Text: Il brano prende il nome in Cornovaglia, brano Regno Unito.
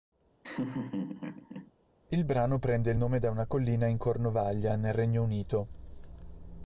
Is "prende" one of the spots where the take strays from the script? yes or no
no